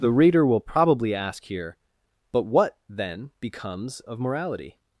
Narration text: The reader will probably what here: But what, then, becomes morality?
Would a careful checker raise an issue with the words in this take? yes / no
yes